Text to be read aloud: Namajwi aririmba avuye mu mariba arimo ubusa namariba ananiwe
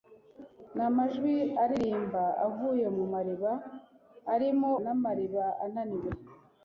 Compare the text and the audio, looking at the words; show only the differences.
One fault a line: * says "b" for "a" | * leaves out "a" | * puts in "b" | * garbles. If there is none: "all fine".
* leaves out "ubusa"